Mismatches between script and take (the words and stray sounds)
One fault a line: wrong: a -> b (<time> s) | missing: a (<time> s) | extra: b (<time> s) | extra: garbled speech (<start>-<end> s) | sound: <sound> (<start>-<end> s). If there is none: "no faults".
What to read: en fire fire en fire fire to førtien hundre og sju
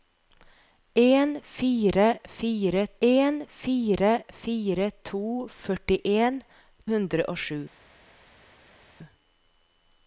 no faults